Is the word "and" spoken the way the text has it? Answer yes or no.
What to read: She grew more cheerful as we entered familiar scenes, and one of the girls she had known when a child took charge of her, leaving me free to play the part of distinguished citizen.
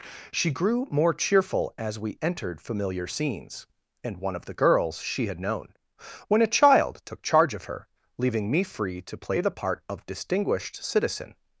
yes